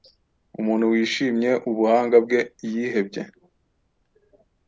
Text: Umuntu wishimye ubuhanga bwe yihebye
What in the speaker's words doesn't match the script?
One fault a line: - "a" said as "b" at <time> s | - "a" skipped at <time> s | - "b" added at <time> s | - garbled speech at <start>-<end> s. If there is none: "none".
none